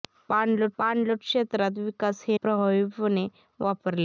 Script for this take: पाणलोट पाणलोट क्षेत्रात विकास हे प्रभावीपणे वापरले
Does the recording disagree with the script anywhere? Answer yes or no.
no